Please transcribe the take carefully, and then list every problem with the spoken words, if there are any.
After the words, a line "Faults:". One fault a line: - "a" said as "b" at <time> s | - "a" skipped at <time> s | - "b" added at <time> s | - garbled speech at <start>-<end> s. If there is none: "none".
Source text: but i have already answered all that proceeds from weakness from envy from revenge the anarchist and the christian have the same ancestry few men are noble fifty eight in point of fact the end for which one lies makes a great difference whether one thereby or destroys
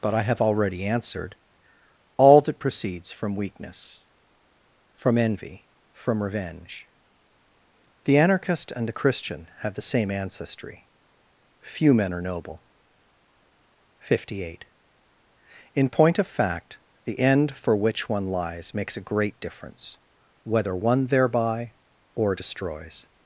but i have already answered all that proceeds from weakness from envy from revenge the anarchist and the christian have the same ancestry few men are noble fifty eight in point of fact the end for which one lies makes a great difference whether one thereby or destroys
Faults:
none